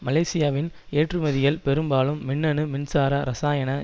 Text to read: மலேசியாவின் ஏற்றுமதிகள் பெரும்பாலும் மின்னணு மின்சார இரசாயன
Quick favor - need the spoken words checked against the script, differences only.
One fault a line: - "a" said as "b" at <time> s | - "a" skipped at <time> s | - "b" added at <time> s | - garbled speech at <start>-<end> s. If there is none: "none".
none